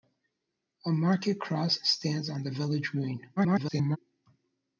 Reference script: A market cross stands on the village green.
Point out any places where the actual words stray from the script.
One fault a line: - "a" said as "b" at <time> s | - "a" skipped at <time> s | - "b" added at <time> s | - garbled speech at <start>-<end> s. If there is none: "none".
- garbled speech at 3.4-4.0 s